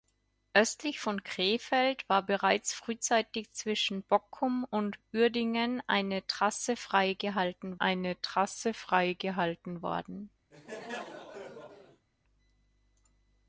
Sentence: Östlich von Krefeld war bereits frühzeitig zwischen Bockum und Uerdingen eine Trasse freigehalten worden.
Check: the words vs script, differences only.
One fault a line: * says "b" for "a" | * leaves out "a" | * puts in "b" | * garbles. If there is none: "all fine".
* puts in "eine Trasse freigehalten"